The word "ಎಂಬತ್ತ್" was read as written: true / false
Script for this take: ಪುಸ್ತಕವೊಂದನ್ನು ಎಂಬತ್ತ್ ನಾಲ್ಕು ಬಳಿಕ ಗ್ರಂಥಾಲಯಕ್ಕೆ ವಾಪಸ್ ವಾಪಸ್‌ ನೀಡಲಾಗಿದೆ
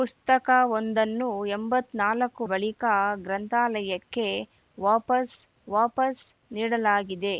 true